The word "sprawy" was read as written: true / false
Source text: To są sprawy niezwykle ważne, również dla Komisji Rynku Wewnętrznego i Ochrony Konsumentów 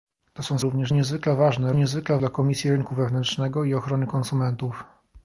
false